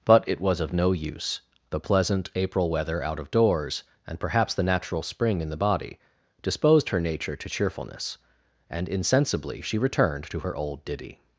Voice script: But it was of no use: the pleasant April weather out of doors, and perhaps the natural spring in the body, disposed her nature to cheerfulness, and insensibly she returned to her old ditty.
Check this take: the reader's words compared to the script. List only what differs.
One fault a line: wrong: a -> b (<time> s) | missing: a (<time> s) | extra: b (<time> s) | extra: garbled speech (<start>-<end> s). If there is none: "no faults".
no faults